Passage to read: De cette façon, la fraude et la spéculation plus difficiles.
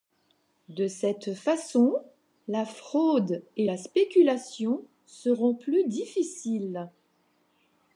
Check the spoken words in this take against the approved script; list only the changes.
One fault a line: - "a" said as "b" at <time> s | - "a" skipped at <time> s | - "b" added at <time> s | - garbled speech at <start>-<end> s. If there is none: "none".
- "seront" added at 5.0 s